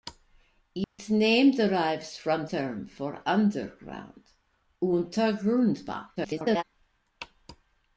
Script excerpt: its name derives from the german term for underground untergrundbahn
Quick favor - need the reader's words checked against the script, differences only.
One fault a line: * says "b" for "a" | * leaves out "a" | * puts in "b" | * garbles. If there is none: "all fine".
* leaves out "the german"
* garbles